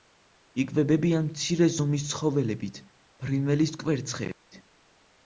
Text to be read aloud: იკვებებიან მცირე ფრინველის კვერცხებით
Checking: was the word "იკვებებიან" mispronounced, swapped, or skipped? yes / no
no